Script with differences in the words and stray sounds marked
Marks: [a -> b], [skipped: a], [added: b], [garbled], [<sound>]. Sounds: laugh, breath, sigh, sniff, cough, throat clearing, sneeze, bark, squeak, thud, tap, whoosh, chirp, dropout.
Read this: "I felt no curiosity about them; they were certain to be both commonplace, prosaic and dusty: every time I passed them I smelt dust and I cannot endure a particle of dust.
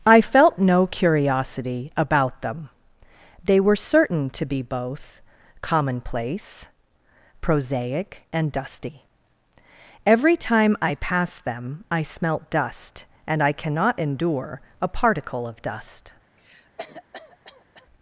"I felt no curiosity about them; they were certain to be both commonplace, prosaic and dusty: every time I passed them I smelt dust and I cannot endure a particle of dust. [cough]